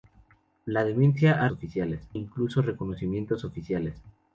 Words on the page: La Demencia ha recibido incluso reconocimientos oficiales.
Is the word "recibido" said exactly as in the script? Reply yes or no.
no